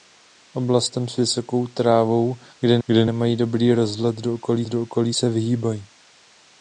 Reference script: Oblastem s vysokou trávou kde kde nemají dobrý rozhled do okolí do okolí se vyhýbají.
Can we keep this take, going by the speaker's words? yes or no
yes